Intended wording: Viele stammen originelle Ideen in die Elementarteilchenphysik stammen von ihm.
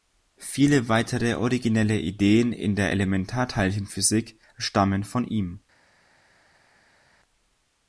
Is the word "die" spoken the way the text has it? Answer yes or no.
no